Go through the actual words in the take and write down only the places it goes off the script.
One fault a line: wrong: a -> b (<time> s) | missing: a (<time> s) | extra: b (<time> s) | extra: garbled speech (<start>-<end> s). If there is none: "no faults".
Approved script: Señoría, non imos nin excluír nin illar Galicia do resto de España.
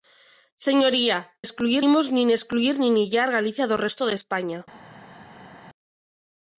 wrong: non -> excluír (1.5 s)